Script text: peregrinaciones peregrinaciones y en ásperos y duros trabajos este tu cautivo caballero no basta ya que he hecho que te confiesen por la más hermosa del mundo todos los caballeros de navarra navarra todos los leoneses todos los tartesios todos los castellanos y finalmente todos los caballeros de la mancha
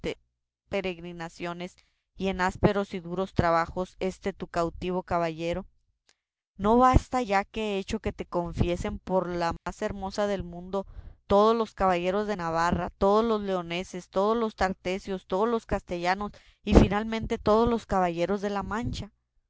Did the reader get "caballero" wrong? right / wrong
right